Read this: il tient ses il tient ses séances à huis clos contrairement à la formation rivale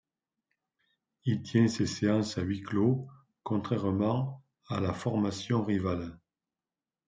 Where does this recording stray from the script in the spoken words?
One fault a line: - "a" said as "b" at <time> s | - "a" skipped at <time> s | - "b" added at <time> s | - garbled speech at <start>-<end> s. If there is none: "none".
- "il tient ses" skipped at 1.9 s